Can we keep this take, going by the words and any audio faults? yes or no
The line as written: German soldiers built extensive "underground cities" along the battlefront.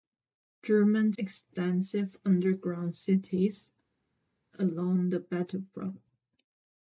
no